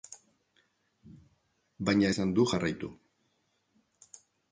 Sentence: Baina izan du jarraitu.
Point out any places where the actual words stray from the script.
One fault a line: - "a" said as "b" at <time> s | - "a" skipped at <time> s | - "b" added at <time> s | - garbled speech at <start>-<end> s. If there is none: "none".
none